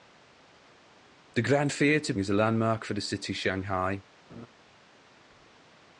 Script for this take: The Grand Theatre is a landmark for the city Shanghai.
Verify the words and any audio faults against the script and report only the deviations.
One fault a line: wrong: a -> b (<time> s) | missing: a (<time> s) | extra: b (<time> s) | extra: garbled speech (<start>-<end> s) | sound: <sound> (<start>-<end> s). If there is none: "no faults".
sound: laugh (4.3-4.5 s)